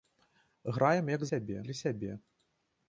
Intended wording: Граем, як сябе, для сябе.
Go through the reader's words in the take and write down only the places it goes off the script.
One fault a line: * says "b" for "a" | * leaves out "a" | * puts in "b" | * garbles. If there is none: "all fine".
all fine